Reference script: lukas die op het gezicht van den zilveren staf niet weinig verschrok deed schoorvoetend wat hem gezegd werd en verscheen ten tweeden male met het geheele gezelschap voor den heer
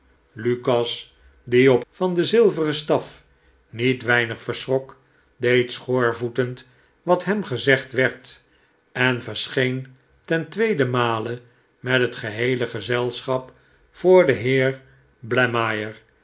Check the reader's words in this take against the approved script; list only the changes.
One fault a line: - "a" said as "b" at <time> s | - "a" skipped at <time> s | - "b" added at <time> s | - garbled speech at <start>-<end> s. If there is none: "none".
- "het gezicht" skipped at 1.8 s